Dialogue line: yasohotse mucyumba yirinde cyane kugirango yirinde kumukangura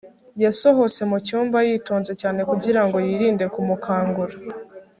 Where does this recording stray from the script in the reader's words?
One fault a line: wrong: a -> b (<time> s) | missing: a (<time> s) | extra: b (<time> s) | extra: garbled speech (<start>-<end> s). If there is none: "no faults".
wrong: yirinde -> yitonze (1.7 s)